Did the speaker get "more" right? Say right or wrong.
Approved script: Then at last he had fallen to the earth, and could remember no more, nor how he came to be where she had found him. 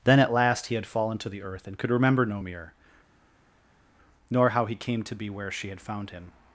wrong